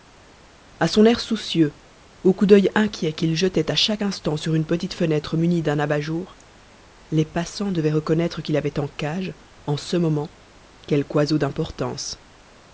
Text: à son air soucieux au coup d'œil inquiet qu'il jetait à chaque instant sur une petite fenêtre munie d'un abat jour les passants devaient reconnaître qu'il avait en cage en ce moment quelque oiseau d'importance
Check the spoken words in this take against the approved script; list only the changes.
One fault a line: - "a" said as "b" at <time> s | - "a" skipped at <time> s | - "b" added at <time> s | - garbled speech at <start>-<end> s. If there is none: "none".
none